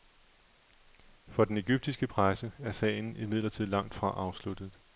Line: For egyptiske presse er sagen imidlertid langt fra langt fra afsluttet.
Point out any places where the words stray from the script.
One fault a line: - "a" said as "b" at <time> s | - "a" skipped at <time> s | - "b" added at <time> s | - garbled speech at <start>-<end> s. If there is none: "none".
- "den" added at 1.4 s
- "langt fra" skipped at 4.1 s